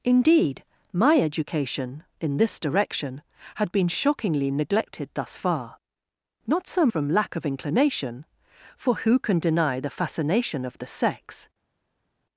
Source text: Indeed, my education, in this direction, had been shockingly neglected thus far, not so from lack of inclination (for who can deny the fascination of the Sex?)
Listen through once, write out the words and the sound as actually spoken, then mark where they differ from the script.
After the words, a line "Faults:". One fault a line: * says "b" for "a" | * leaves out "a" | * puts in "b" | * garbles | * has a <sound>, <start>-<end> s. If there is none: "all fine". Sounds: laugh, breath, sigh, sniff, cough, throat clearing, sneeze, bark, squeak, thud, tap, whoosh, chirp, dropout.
Indeed, my education, in this direction, had been shockingly neglected thus far, not so from lack of inclination (for who can deny the fascination of the Sex?)
Faults:
all fine